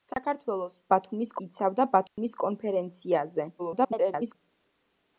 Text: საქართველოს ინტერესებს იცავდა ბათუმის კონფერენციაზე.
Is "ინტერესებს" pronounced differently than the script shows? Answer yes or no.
yes